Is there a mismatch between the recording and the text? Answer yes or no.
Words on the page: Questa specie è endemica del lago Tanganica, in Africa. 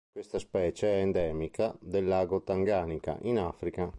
no